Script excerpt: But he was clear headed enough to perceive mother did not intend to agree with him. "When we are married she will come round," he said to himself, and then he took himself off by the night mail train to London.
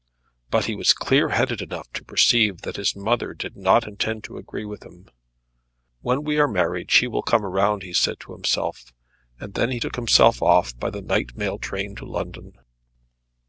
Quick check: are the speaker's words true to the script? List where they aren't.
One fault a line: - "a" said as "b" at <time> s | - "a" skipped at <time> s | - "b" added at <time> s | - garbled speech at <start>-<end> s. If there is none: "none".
- "that his" added at 2.6 s